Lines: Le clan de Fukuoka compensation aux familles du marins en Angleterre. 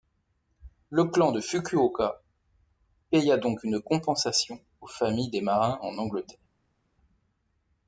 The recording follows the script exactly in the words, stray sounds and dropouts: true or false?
false